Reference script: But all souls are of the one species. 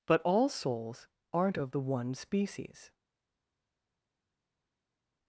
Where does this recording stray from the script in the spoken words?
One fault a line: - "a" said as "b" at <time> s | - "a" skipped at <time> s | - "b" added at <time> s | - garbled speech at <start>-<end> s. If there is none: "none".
- "are" said as "aren't" at 1.3 s